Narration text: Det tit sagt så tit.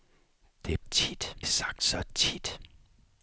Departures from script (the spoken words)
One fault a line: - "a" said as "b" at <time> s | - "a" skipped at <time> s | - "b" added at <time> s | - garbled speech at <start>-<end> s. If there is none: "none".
none